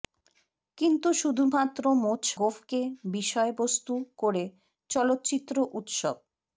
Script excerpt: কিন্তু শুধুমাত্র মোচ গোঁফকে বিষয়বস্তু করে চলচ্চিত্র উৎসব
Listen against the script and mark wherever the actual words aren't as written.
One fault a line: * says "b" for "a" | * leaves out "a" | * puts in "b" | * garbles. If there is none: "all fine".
all fine